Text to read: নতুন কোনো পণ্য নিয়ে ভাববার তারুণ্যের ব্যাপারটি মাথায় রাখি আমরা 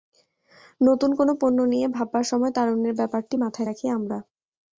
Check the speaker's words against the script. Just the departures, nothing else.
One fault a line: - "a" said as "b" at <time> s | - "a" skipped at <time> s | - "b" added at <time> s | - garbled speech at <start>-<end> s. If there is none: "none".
- "সময়" added at 2.3 s